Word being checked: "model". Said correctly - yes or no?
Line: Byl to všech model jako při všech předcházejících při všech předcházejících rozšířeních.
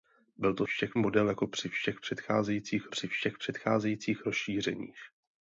yes